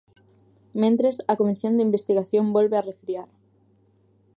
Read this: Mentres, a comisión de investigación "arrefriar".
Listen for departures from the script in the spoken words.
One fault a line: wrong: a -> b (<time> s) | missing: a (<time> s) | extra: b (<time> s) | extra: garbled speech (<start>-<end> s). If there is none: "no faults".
extra: volve (2.5 s)